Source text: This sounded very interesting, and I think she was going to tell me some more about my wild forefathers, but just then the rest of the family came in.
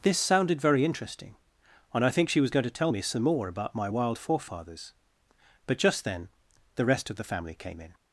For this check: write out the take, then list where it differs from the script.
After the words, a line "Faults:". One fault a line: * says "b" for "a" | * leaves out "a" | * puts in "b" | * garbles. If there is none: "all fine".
This sounded very interesting, and I think she was going to tell me some more about my wild forefathers, but just then the rest of the family came in.
Faults:
all fine